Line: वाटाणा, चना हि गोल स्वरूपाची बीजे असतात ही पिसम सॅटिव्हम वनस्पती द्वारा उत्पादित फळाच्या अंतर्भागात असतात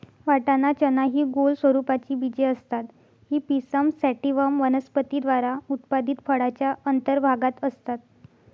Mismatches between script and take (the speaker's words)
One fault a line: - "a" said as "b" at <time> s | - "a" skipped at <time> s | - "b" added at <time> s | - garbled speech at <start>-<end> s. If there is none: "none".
none